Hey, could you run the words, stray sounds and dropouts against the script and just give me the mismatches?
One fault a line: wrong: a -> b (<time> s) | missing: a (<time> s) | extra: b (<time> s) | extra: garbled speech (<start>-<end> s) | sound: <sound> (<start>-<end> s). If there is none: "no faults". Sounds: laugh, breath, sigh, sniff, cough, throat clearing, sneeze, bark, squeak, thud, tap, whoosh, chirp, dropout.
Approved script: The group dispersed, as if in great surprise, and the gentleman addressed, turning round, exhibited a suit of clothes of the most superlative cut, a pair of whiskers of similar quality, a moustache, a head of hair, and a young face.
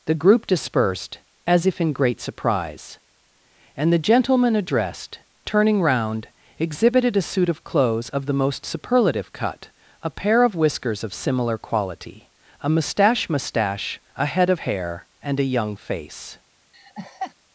extra: moustache (13.3 s)
sound: laugh (16.7-17.3 s)